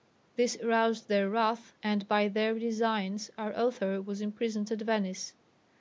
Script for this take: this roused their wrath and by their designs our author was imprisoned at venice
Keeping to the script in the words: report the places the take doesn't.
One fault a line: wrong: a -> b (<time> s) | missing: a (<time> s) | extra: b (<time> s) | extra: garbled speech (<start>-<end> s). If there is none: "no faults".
no faults